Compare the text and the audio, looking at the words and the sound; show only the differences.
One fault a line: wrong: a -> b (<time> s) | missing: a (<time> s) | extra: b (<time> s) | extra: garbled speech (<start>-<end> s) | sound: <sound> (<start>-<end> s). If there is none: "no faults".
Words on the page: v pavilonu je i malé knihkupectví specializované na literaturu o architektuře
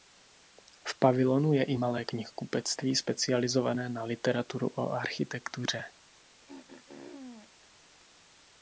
sound: throat clearing (6.4-7.5 s)